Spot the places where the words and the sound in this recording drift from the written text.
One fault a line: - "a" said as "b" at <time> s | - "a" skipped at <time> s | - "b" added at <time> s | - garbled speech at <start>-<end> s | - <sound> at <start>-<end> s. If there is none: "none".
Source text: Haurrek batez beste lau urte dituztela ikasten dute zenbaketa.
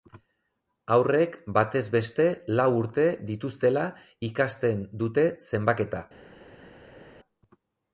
none